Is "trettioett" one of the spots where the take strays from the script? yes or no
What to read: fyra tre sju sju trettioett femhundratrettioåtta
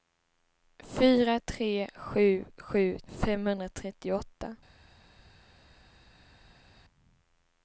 yes